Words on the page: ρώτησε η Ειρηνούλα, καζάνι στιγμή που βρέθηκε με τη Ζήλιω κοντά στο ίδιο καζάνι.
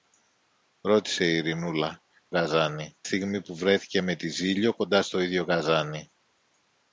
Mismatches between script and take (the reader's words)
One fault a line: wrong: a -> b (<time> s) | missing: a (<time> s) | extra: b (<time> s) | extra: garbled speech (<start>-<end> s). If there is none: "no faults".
no faults